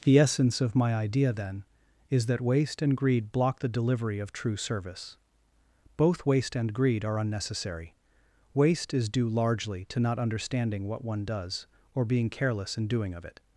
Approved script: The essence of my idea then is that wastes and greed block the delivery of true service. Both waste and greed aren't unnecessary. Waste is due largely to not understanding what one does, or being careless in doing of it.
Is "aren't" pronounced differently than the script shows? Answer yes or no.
yes